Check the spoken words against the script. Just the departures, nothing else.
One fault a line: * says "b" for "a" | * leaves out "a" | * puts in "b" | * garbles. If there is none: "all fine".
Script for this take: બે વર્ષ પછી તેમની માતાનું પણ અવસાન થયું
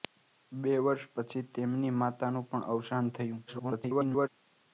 * garbles